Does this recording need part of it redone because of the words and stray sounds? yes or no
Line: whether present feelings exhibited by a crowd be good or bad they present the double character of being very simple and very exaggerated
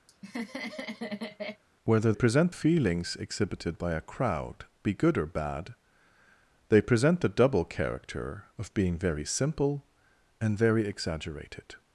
yes